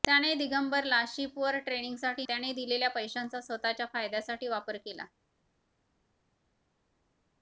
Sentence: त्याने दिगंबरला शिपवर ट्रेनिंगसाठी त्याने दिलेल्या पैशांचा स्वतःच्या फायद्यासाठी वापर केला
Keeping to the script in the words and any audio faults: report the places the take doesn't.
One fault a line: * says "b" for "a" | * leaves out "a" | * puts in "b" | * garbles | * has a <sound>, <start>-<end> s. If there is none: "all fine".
all fine